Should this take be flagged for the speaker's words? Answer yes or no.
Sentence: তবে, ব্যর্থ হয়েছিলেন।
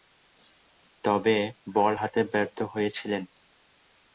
yes